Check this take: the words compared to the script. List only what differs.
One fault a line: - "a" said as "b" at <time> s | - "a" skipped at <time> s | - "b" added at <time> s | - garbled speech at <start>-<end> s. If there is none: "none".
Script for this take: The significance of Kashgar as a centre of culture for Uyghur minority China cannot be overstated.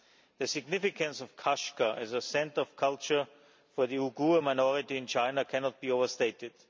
- "the" added at 3.9 s
- "in" added at 5.0 s